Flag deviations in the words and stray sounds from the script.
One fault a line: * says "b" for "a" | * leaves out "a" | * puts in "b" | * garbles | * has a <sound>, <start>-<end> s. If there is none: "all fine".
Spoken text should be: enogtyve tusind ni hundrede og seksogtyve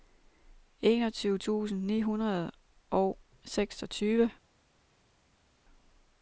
all fine